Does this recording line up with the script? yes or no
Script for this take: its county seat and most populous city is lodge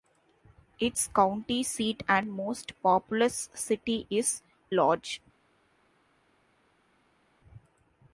yes